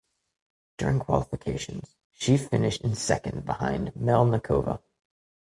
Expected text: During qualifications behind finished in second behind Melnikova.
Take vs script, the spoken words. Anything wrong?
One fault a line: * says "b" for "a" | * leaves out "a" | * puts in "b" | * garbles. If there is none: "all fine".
* says "she" for "behind"